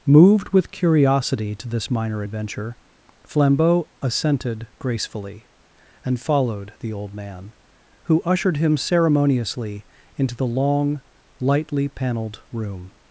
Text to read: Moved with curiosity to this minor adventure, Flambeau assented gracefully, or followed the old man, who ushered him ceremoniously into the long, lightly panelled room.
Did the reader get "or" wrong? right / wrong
wrong